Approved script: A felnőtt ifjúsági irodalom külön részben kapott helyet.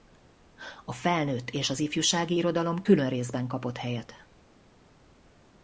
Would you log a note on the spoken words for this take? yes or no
yes